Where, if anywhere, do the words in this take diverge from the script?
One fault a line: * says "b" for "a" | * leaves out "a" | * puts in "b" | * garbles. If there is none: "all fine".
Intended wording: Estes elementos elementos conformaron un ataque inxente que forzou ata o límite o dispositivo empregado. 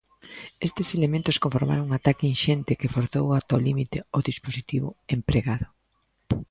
* leaves out "elementos"